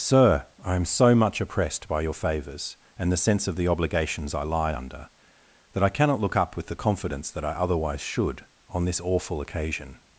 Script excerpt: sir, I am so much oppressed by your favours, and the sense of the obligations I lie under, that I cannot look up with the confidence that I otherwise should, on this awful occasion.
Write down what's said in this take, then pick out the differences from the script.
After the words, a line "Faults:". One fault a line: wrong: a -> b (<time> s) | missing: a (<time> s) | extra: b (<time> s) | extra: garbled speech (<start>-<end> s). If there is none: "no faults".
sir, I am so much oppressed by your favours, and the sense of the obligations I lie under, that I cannot look up with the confidence that I otherwise should, on this awful occasion.
Faults:
no faults